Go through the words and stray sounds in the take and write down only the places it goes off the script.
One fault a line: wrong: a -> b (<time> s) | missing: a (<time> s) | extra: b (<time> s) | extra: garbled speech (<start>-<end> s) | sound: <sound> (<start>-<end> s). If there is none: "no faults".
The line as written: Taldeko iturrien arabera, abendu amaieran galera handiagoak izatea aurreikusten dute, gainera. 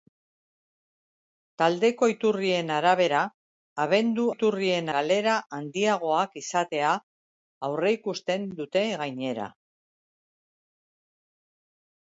wrong: amaieran -> iturrien (4.3 s)